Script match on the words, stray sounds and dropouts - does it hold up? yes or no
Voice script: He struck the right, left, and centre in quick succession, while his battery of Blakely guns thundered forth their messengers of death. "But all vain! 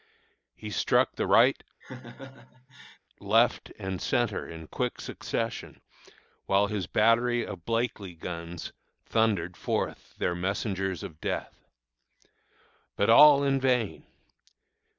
no